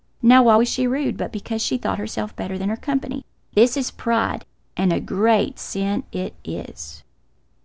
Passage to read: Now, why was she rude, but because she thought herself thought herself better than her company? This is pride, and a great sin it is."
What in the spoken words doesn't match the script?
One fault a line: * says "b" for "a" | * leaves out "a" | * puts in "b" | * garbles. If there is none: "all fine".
* leaves out "thought herself"